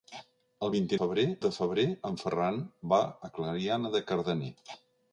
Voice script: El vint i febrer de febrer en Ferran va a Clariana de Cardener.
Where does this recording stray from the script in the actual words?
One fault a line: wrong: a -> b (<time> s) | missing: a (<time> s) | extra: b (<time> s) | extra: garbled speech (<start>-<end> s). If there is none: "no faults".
no faults